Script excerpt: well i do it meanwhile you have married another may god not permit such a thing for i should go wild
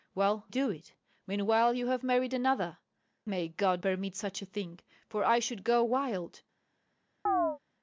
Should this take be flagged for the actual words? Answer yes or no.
yes